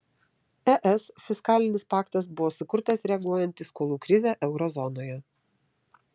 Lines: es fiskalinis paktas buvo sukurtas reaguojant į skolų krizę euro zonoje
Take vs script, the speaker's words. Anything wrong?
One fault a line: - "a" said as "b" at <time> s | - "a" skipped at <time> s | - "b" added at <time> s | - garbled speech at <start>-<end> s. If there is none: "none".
none